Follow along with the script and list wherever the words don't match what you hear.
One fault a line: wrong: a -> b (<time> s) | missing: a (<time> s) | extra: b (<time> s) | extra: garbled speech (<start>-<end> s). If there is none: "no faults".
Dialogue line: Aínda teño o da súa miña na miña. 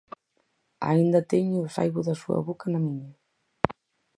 extra: saibo (1.7 s)
wrong: miña -> boca (2.5 s)